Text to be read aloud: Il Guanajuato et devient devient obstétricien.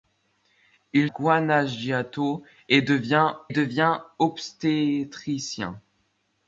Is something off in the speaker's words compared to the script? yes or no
no